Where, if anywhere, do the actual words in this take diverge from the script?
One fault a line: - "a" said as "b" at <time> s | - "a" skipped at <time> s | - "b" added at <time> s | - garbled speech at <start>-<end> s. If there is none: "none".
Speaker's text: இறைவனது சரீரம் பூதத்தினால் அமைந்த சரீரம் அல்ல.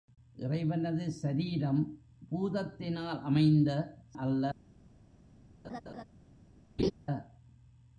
- "சரீரம்" skipped at 3.7 s